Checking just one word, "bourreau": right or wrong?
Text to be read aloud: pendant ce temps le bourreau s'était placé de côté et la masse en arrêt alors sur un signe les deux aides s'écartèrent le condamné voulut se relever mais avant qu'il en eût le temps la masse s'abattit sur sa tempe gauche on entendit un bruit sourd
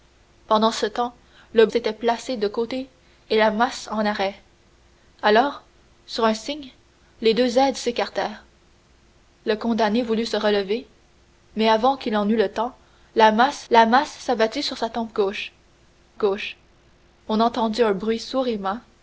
wrong